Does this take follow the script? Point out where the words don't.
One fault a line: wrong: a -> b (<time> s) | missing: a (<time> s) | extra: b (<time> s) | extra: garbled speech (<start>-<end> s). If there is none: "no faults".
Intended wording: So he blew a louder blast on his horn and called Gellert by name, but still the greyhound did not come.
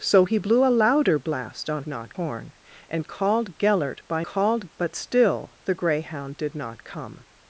wrong: his -> not (1.9 s)
wrong: name -> called (4.2 s)